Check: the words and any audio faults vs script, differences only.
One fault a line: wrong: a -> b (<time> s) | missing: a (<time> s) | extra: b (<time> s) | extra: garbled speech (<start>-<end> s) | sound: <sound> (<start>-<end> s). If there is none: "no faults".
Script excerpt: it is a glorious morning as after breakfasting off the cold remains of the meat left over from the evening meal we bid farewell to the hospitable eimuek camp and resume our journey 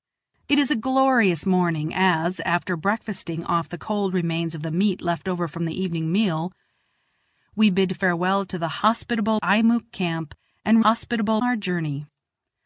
wrong: resume -> hospitable (10.8 s)